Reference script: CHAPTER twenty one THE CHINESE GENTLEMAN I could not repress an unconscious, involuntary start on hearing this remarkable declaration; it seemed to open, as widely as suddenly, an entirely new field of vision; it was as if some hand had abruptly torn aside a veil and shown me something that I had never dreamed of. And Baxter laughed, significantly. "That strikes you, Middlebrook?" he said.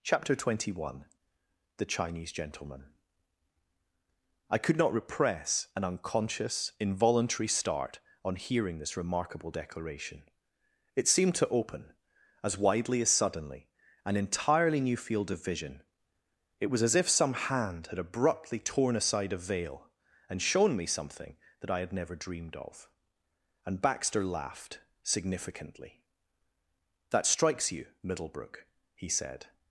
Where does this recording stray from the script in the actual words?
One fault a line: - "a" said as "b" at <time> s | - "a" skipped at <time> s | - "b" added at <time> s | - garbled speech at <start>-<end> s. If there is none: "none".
none